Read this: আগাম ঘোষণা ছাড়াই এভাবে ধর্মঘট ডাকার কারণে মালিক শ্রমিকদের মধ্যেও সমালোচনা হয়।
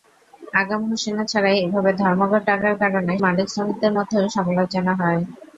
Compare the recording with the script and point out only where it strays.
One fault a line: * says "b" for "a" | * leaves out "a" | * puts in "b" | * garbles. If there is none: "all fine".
all fine